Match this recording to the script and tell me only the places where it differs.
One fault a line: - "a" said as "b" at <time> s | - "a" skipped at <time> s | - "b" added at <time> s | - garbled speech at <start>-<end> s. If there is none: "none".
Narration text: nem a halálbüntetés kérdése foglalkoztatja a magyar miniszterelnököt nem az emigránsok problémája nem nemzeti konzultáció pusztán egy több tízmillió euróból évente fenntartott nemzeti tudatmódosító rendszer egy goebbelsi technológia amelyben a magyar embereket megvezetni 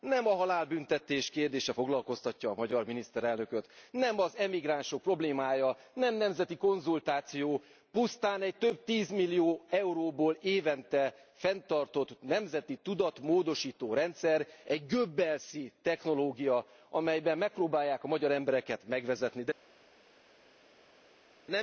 - "megpróbálják" added at 17.4 s